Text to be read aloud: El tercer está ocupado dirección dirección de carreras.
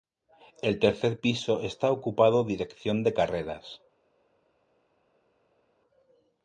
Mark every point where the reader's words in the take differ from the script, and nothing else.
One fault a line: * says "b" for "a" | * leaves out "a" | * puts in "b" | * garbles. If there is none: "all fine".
* puts in "piso"
* leaves out "dirección"